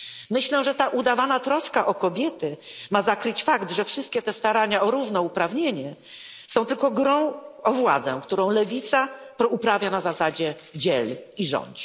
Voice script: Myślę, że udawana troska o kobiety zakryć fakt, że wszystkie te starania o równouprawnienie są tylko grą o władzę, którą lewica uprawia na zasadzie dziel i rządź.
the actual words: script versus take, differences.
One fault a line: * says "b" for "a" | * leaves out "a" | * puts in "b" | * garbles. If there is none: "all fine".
* puts in "ta"
* puts in "ma"